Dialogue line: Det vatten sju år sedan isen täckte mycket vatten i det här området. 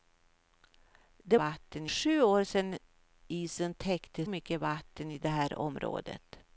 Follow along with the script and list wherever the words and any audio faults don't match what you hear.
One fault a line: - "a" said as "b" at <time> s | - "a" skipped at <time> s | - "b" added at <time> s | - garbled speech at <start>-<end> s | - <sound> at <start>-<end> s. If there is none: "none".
none